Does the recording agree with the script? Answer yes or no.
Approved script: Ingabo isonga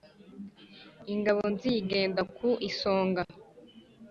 no